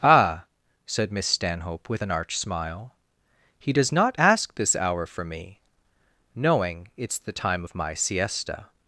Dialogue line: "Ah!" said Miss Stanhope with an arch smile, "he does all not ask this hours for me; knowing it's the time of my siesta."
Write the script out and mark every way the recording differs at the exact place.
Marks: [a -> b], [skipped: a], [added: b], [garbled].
"Ah!" said Miss Stanhope with an arch smile, "he does [skipped: all] not ask this [hours -> hour] for me; knowing it's the time of my siesta."